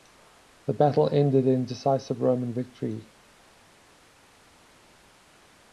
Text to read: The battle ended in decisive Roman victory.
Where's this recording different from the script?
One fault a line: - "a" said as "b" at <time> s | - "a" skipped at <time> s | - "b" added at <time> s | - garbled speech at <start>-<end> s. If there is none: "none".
none